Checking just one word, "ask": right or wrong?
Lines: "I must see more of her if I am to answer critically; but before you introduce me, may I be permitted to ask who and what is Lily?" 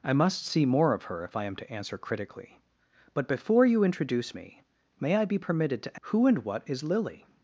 wrong